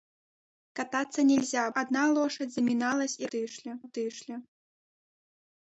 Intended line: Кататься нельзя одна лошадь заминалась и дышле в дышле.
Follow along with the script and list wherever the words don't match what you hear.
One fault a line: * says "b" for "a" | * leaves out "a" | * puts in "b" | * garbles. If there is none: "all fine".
all fine